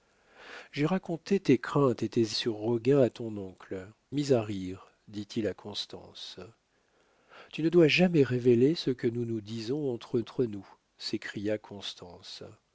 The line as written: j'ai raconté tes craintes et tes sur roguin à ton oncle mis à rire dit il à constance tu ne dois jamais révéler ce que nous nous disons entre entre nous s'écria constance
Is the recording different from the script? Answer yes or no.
no